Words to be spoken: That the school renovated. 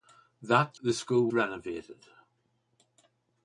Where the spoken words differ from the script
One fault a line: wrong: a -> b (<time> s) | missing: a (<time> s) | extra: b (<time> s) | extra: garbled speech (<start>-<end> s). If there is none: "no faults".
no faults